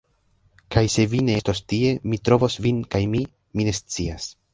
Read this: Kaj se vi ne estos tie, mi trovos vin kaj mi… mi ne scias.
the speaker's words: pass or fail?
pass